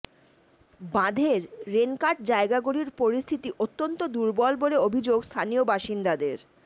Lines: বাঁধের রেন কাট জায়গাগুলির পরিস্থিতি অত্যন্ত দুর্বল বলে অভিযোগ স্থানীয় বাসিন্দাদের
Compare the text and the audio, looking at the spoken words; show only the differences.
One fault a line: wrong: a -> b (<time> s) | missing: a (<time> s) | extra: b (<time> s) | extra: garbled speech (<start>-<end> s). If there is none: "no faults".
no faults